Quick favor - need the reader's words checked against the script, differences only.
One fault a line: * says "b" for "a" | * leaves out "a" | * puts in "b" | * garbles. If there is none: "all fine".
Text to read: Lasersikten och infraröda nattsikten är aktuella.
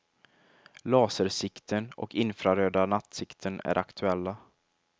all fine